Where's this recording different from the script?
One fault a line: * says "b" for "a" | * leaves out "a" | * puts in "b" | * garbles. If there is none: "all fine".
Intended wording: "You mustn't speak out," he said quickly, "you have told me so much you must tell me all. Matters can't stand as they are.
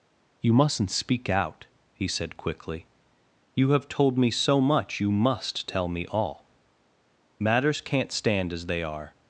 all fine